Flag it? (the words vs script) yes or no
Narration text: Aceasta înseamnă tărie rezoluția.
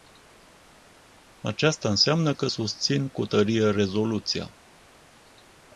yes